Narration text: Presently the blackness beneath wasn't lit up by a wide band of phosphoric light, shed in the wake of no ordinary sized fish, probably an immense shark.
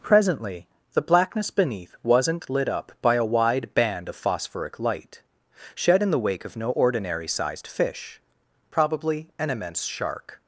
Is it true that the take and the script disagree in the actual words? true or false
false